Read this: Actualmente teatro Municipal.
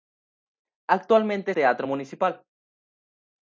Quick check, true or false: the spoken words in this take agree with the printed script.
true